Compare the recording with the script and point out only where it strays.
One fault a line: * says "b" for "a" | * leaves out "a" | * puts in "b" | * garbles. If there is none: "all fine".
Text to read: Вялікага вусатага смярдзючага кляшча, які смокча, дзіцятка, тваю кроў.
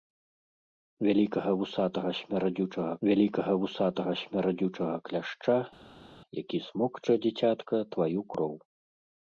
* puts in "вялікага вусатага смярдзючага"